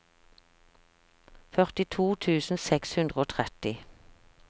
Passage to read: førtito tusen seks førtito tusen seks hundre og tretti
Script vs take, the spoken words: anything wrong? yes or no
yes